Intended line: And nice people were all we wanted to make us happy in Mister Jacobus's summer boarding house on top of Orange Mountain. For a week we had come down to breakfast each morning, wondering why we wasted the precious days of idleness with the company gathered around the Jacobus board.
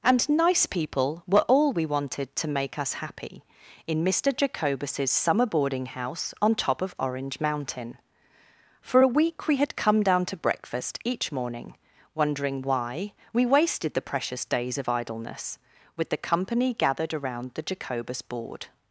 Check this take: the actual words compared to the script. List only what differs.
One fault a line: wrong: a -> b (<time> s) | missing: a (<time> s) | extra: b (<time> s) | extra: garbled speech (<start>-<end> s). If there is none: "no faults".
no faults